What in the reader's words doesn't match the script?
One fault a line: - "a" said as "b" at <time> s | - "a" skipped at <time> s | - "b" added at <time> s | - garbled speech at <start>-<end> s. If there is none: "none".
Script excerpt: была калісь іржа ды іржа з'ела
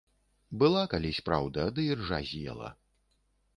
- "іржа" said as "праўда" at 1.3 s